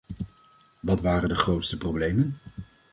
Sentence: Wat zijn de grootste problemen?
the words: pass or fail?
fail